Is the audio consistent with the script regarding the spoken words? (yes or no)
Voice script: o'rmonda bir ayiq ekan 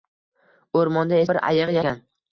yes